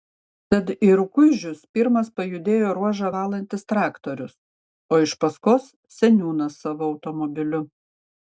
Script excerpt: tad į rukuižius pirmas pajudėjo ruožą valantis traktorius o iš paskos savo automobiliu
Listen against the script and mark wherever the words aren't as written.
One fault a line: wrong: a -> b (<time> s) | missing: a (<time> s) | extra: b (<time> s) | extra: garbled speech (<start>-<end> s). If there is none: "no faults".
extra: seniūnas (6.0 s)